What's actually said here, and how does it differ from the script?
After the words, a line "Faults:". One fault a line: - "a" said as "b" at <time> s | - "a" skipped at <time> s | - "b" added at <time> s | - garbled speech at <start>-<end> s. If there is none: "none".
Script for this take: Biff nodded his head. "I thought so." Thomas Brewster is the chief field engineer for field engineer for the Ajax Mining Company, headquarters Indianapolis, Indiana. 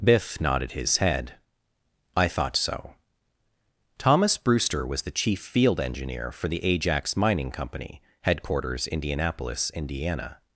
Biff nodded his head. "I thought so." Thomas Brewster was the chief field engineer for the Ajax Mining Company, headquarters Indianapolis, Indiana.
Faults:
- "is" said as "was" at 4.8 s
- "field engineer for" skipped at 6.5 s